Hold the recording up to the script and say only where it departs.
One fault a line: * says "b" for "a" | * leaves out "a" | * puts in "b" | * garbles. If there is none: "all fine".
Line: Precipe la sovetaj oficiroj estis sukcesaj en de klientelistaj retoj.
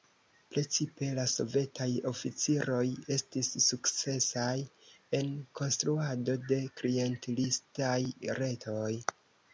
* puts in "konstruado"